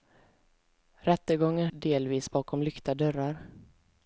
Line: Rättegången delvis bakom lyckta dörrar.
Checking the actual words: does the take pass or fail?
pass